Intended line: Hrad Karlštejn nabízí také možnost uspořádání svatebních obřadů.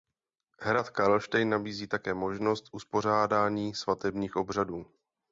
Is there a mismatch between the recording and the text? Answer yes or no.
no